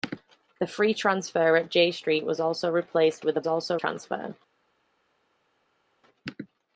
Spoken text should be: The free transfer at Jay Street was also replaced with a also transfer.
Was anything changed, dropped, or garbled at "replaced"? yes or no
no